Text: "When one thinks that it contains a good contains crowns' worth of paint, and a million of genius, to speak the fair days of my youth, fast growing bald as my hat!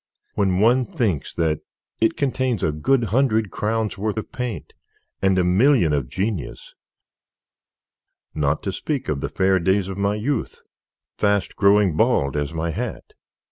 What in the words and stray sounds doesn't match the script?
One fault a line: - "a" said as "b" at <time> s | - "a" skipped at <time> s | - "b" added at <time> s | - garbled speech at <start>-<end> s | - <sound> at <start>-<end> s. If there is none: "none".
- "contains" said as "hundred" at 3.1 s
- "not" added at 8.3 s
- "of" added at 9.1 s